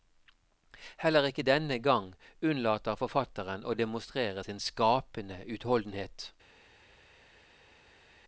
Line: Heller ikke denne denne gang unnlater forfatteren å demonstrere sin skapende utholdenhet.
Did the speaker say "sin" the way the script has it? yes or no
yes